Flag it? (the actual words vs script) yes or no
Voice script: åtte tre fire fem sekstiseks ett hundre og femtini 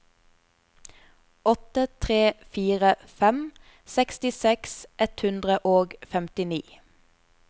no